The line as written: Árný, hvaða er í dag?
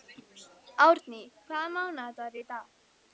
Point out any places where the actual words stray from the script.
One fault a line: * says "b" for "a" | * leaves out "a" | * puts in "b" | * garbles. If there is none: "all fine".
* puts in "mánaðardagur"